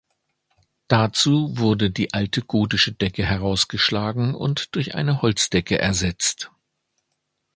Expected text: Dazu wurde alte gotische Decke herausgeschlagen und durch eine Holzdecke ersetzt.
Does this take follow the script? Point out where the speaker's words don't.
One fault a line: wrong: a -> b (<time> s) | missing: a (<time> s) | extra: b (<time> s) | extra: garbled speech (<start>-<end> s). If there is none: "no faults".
extra: die (1.9 s)